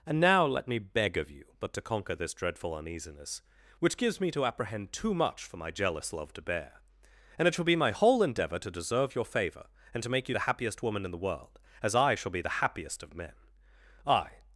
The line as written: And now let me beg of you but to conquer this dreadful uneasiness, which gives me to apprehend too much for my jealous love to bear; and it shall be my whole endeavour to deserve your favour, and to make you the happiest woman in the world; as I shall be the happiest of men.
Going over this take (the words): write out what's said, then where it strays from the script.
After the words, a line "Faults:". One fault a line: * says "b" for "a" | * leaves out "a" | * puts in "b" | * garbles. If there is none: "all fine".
And now let me beg of you but to conquer this dreadful uneasiness, which gives me to apprehend too much for my jealous love to bear; and it shall be my whole endeavour to deserve your favour, and to make you the happiest woman in the world; as I shall be the happiest of men. I
Faults:
* puts in "I"